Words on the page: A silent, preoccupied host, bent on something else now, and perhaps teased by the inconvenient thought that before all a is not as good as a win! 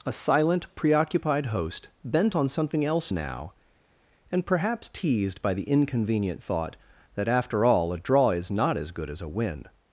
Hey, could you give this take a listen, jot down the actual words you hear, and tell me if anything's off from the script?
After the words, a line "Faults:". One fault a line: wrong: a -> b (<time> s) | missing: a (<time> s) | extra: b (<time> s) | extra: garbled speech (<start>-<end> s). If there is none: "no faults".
A silent, preoccupied host, bent on something else now, and perhaps teased by the inconvenient thought that after all a draw is not as good as a win!
Faults:
wrong: before -> after (7.3 s)
extra: draw (8.0 s)